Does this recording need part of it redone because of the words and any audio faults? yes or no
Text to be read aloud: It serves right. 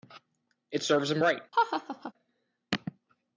yes